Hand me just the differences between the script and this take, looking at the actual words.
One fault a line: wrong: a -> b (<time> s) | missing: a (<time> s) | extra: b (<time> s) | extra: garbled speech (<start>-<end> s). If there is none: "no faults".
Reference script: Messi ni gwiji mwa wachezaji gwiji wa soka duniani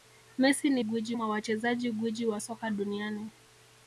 no faults